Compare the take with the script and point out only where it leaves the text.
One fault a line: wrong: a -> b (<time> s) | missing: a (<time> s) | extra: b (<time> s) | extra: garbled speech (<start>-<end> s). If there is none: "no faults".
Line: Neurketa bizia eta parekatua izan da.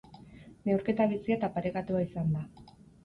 no faults